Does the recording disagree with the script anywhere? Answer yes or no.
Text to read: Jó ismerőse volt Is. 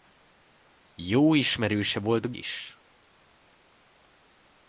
no